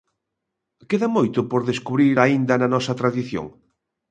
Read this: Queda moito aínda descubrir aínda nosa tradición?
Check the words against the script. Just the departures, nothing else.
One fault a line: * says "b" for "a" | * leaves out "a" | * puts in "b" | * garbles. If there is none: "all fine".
* says "por" for "aínda"
* puts in "na"